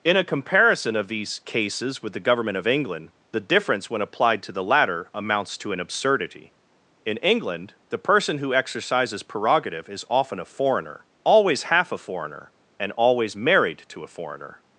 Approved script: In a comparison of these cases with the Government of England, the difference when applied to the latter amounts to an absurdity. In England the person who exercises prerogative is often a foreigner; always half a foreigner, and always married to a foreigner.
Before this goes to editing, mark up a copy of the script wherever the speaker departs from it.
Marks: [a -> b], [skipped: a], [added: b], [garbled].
In a comparison of these cases with the Government of England, the difference when applied to the latter amounts to an absurdity. In England the person who exercises prerogative is often a foreigner; always half a foreigner, and always married to a foreigner.